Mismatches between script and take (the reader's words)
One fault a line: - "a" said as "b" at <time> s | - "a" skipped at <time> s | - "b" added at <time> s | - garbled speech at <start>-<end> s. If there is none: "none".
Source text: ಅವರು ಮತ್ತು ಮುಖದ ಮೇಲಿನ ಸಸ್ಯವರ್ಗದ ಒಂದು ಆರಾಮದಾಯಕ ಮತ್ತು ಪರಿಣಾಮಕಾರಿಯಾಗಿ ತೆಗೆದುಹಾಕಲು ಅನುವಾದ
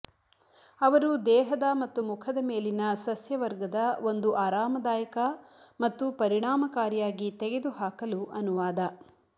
- "ದೇಹದ" added at 1.2 s